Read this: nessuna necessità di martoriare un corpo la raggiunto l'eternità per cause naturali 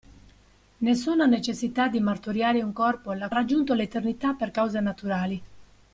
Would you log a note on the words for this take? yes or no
no